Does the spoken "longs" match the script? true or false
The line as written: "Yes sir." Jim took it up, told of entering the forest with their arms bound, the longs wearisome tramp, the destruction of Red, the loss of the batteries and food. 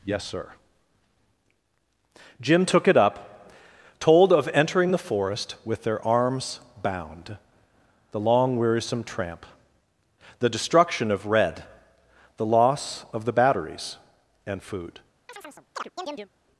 false